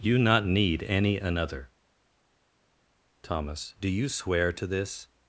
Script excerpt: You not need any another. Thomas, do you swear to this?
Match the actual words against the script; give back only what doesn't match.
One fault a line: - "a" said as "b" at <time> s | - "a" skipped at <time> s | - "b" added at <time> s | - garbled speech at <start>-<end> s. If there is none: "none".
none